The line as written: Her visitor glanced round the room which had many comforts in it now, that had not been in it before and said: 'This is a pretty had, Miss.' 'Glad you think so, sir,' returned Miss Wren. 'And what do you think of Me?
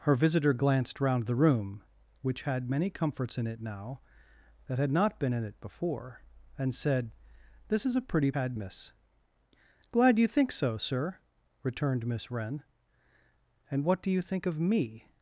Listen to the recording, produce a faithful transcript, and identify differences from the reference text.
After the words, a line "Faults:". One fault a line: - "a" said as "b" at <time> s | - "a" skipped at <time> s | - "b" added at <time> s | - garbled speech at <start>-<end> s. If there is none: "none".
Her visitor glanced round the room which had many comforts in it now, that had not been in it before and said: 'This is a pretty had, Miss.' 'Glad you think so, sir,' returned Miss Wren. 'And what do you think of Me?
Faults:
none